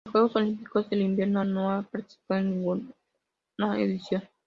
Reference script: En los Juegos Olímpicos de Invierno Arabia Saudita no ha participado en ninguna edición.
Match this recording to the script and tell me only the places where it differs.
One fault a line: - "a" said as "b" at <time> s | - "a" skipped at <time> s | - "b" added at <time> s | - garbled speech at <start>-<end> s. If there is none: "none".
- "Arabia Saudita" skipped at 1.4 s